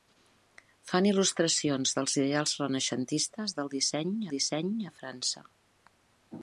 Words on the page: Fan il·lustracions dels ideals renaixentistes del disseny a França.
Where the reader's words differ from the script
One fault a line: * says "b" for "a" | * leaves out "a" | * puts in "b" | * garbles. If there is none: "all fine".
* puts in "disseny"